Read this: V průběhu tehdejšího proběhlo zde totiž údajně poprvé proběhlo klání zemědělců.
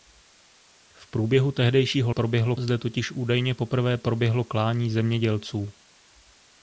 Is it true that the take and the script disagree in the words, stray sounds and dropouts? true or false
false